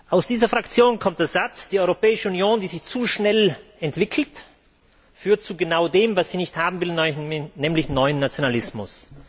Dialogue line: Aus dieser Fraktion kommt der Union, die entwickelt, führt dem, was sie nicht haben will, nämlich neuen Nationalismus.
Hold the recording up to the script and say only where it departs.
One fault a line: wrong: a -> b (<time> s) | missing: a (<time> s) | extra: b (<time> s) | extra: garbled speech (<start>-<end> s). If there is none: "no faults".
extra: Satz Die Europäische (1.3 s)
extra: sich zu schnell (2.7 s)
extra: zu genau (5.4 s)